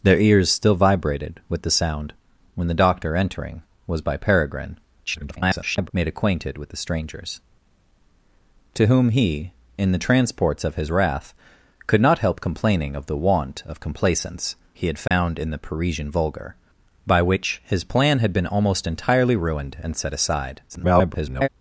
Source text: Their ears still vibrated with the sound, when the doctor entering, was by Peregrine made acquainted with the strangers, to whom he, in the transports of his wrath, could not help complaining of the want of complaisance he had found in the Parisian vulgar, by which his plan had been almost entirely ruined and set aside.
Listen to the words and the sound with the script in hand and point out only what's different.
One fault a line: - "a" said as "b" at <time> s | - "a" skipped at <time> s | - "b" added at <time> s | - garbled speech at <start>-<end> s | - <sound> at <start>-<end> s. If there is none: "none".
- garbled speech at 5.1-5.9 s
- dropout at 15.1-15.1 s
- garbled speech at 20.7-21.5 s